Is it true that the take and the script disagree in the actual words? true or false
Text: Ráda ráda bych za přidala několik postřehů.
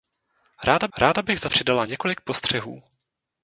false